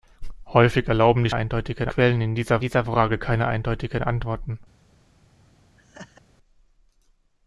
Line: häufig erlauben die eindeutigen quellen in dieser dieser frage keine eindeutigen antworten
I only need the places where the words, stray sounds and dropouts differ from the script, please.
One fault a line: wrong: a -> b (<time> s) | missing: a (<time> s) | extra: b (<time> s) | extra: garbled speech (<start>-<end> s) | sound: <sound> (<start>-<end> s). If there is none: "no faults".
sound: laugh (5.8-6.2 s)